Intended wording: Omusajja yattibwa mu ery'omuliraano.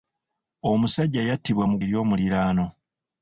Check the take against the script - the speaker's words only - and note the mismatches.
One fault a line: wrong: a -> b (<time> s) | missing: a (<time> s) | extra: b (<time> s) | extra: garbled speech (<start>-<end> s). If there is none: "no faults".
no faults